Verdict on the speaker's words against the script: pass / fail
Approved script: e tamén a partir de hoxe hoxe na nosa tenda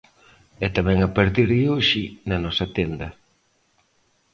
fail